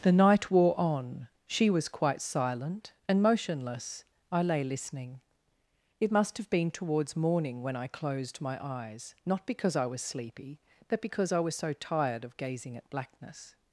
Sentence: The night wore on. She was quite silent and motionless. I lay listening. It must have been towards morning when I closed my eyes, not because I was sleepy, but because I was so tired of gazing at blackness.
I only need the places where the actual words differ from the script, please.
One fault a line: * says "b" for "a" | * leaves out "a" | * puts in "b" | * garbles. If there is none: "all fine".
all fine